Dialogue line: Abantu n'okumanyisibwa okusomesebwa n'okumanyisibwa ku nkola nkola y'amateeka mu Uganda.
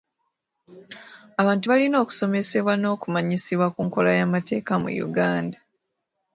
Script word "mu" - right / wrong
right